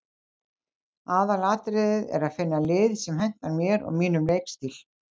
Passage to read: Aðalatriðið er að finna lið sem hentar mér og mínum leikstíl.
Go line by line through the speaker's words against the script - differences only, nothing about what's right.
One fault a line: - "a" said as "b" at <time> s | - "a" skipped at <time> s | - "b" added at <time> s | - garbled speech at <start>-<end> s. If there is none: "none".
none